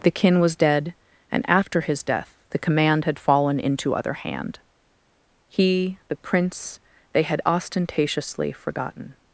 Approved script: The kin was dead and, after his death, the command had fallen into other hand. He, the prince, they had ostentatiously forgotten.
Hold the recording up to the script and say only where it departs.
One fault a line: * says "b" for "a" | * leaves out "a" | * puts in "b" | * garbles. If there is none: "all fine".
all fine